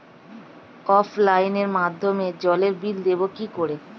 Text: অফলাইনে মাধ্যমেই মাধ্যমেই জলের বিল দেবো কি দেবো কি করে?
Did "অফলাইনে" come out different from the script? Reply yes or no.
no